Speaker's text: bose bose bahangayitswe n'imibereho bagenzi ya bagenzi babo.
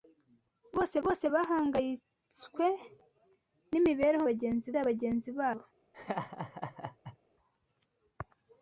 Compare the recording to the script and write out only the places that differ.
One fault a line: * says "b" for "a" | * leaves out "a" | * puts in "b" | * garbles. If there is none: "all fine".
all fine